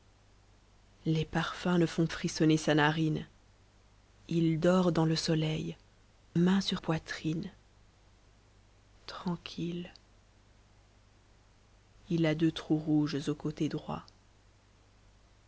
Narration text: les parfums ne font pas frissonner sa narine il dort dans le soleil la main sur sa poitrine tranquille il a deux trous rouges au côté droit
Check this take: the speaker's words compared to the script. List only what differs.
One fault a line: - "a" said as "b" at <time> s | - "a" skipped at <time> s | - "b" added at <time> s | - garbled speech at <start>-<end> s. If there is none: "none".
- "pas" skipped at 2.1 s
- "la" skipped at 5.8 s
- "sa" skipped at 6.8 s